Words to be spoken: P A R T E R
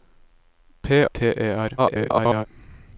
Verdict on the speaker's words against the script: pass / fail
fail